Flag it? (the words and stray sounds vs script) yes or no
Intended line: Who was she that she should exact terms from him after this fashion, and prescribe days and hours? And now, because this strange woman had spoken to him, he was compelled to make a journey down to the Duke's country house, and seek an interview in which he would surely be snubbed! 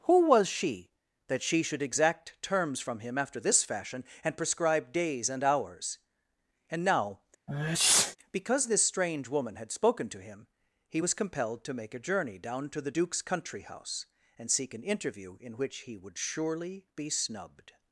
yes